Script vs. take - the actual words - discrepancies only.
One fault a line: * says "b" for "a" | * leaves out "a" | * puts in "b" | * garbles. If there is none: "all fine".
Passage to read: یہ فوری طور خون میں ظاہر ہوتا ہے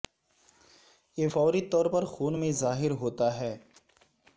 * puts in "پر"